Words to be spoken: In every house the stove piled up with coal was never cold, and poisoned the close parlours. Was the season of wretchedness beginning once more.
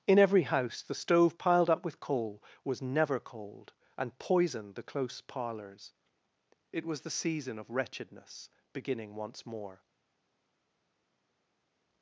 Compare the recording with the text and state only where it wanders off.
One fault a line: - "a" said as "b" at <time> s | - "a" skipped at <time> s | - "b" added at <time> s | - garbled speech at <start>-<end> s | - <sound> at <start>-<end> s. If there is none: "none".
- "It" added at 6.7 s